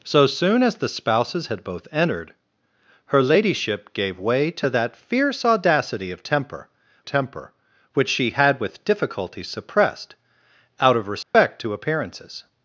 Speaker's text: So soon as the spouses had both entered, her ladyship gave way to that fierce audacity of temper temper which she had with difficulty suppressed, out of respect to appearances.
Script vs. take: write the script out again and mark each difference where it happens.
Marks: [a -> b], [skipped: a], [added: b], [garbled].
So soon as the spouses had both entered, her ladyship gave way to that fierce audacity of temper temper which she had with difficulty suppressed, out of respect to appearances.